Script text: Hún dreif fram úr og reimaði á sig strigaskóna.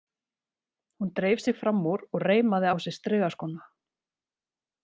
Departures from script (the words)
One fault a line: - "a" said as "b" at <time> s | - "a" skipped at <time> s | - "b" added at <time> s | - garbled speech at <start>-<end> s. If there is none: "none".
- "sig" added at 1.4 s